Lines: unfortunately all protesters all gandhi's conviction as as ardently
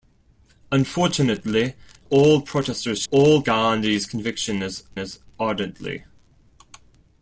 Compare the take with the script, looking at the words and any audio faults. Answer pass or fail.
pass